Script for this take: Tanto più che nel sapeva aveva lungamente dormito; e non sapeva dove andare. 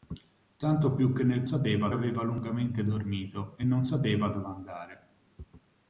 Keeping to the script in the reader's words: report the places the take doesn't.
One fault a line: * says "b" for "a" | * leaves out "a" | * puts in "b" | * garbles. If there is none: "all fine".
all fine